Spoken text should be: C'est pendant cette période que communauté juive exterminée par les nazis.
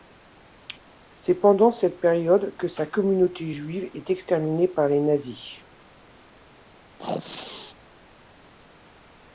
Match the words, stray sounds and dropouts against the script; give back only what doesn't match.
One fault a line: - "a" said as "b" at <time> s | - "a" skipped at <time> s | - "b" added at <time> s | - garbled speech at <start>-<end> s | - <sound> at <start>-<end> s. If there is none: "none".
- "sa" added at 2.7 s
- "est" added at 3.9 s
- sneeze at 7.0-7.7 s